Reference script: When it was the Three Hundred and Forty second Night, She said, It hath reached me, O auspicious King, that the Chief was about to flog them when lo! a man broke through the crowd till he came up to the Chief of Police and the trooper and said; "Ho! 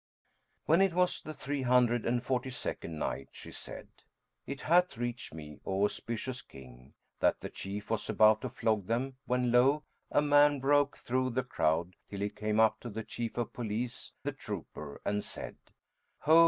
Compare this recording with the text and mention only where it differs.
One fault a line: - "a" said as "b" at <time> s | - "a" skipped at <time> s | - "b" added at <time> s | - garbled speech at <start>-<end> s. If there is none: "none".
- "and" skipped at 14.1 s